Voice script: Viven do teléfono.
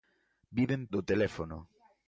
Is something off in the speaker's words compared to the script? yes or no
no